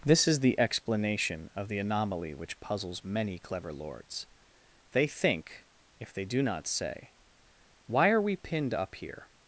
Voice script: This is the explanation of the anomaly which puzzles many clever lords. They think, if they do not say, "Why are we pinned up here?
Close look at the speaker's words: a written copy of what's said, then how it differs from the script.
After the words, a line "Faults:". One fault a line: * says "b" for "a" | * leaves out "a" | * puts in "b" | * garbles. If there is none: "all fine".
This is the explanation of the anomaly which puzzles many clever lords. They think, if they do not say, "Why are we pinned up here?
Faults:
all fine